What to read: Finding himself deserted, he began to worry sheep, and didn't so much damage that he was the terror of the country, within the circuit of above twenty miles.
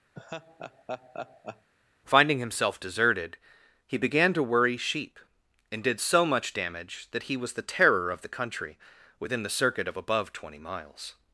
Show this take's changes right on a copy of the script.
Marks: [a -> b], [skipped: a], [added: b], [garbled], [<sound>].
[laugh] Finding himself deserted, he began to worry sheep, and [didn't -> did] so much damage that he was the terror of the country, within the circuit of above twenty miles.